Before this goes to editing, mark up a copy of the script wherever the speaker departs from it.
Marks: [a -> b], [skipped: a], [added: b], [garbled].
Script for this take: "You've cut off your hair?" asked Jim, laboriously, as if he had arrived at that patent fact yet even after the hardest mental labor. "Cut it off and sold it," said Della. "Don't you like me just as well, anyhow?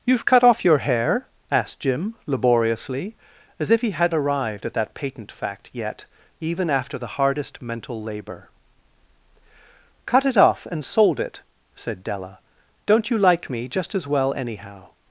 "You've cut off your hair?" asked Jim, laboriously, as if he had arrived at that patent fact yet even after the hardest mental labor. "Cut it off and sold it," said Della. "Don't you like me just as well, anyhow?